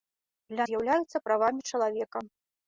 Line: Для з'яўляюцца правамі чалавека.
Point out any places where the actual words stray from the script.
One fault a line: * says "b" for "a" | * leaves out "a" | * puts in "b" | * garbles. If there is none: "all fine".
all fine